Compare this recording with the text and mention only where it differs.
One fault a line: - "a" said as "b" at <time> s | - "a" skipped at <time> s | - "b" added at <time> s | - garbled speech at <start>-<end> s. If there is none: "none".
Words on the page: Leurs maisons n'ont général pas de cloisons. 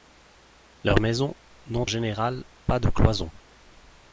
none